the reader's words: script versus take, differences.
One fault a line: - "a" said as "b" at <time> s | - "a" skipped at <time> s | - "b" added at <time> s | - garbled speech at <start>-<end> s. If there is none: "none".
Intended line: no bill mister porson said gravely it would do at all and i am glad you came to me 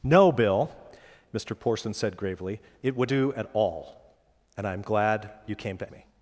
none